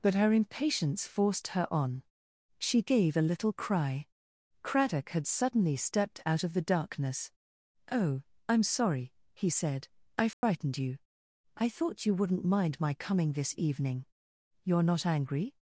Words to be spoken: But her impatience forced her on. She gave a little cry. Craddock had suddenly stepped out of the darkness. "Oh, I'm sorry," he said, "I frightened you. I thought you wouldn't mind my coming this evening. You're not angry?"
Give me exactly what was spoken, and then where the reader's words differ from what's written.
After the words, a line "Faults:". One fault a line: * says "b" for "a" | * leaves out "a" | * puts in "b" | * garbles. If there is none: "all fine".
But her impatience forced her on. She gave a little cry. Craddock had suddenly stepped out of the darkness. "Oh, I'm sorry," he said, "I frightened you. I thought you wouldn't mind my coming this evening. You're not angry?"
Faults:
all fine